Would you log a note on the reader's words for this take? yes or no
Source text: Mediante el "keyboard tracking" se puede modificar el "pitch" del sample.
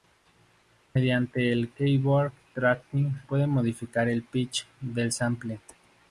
yes